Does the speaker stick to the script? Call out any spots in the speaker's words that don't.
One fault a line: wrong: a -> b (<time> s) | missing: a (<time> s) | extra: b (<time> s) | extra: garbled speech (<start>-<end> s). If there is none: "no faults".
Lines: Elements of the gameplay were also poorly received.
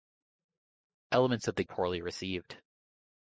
missing: gameplay were also (1.6 s)